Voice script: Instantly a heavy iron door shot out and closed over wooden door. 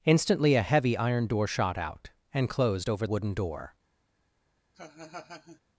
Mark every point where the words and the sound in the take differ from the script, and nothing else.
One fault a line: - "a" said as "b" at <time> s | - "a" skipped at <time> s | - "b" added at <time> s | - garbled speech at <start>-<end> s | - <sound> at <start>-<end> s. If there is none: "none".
- laugh at 4.7-5.6 s